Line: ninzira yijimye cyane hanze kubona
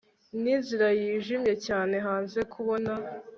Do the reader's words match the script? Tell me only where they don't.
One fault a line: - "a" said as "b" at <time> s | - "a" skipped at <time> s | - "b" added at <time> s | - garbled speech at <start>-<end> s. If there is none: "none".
none